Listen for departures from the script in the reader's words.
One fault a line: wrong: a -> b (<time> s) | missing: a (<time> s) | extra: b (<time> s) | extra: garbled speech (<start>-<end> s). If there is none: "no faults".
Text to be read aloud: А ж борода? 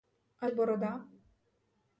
no faults